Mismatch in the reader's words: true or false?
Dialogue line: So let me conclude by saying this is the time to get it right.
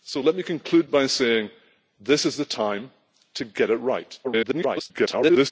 true